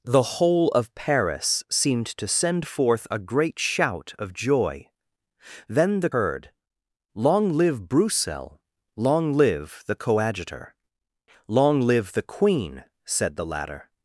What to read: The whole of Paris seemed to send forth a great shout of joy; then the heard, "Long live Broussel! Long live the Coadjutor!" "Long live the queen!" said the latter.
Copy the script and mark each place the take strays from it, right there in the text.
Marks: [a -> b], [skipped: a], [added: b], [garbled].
The whole of Paris seemed to send forth a great shout of joy; then the heard, "Long live Broussel! Long live the Coadjutor!" "Long live the queen!" said the latter.